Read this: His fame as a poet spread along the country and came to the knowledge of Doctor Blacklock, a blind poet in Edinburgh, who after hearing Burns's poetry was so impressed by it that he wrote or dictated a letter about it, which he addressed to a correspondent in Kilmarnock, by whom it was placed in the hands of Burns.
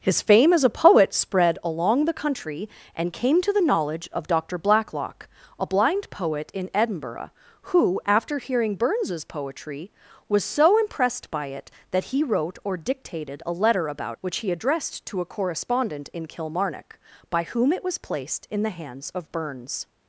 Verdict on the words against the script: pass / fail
fail